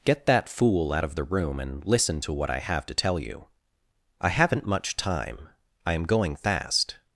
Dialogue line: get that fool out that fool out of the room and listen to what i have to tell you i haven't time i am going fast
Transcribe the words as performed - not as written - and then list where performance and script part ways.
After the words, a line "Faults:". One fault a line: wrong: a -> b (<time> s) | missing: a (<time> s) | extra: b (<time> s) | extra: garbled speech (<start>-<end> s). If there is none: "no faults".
get that fool out of the room and listen to what i have to tell you i haven't much time i am going fast
Faults:
missing: that fool out (1.1 s)
extra: much (4.7 s)